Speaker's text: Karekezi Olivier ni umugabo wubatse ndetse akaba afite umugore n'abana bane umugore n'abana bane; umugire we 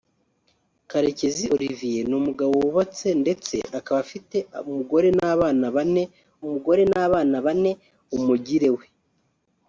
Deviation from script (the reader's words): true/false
false